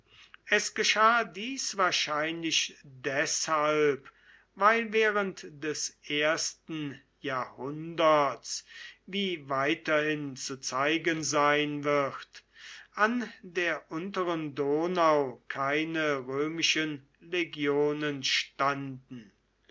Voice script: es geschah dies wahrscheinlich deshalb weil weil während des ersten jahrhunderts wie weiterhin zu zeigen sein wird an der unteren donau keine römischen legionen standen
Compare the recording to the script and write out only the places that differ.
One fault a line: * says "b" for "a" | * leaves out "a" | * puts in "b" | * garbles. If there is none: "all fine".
* leaves out "weil"